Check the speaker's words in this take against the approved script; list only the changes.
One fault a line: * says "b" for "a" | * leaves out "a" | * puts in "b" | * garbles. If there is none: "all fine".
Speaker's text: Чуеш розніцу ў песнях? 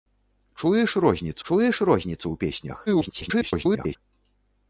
* puts in "чуеш розніцу"
* garbles